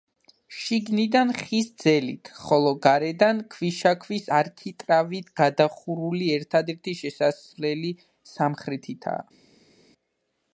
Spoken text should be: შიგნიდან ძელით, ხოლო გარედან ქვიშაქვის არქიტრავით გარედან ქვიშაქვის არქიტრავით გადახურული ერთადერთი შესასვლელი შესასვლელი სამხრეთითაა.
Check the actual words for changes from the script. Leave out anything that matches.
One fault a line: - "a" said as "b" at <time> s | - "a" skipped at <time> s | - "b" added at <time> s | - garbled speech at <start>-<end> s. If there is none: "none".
- "ხის" added at 1.4 s
- "გარედან ქვიშაქვის არქიტრავით" skipped at 5.3 s
- "შესასვლელი" skipped at 8.0 s